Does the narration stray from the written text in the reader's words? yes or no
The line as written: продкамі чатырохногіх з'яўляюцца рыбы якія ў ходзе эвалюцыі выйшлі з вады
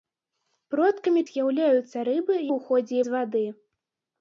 yes